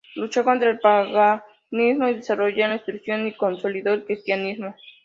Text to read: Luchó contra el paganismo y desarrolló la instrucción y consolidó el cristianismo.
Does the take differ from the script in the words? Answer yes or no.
no